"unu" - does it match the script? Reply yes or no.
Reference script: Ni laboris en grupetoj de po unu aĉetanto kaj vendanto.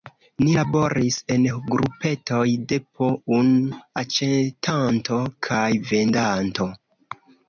yes